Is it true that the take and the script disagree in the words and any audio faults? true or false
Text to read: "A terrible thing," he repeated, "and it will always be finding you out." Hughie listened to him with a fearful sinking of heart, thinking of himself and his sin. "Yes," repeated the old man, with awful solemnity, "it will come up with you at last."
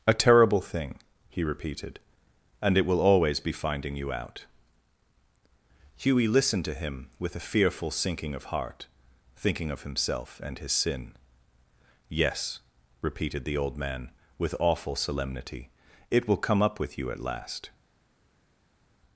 false